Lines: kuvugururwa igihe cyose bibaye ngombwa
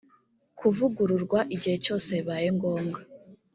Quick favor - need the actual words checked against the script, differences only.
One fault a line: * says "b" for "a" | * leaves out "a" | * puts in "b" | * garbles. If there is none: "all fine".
all fine